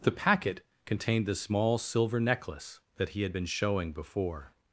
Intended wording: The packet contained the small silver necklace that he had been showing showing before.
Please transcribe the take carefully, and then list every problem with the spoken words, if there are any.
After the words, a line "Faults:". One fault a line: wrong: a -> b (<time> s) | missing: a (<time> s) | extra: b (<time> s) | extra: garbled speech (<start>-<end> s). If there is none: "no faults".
The packet contained the small silver necklace that he had been showing before.
Faults:
missing: showing (3.9 s)